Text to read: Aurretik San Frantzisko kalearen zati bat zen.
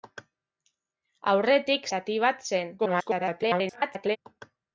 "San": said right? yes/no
no